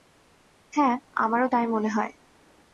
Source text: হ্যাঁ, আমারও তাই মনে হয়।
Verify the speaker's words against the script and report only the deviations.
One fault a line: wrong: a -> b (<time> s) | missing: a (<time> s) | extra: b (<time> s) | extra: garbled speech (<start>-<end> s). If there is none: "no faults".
no faults